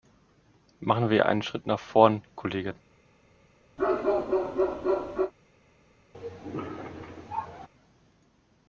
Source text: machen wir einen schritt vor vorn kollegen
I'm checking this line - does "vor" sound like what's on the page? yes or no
no